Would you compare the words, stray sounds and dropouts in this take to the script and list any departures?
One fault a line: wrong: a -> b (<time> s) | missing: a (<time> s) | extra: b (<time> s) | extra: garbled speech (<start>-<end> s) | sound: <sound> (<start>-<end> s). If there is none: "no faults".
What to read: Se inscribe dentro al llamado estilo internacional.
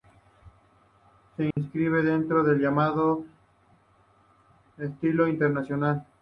sound: dropout (1.5-1.6 s)
wrong: al -> del (2.4 s)